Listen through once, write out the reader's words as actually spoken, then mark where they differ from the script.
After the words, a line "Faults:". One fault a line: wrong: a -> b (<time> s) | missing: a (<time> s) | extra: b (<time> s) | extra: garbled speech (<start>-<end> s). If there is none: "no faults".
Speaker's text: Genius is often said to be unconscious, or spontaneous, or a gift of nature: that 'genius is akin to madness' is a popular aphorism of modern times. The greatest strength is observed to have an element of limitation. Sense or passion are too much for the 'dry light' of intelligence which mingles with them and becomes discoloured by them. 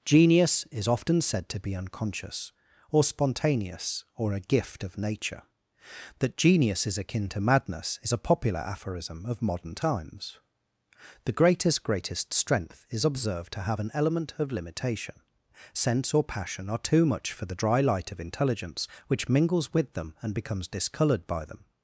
Genius is often said to be unconscious, or spontaneous, or a gift of nature: that 'genius is akin to madness' is a popular aphorism of modern times. The greatest greatest strength is observed to have an element of limitation. Sense or passion are too much for the 'dry light' of intelligence which mingles with them and becomes discoloured by them.
Faults:
extra: greatest (11.8 s)